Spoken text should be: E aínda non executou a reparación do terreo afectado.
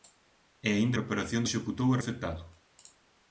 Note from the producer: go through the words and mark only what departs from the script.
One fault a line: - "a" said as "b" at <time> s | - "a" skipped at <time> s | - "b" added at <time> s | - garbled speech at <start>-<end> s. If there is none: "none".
- "non" said as "reparación" at 1.0 s
- "reparación do terreo" skipped at 2.0 s